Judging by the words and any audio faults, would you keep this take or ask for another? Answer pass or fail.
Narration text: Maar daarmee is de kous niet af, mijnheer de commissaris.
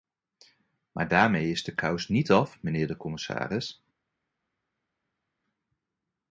pass